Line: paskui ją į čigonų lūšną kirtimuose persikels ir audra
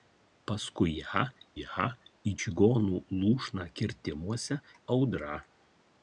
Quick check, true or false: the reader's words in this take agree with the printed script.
false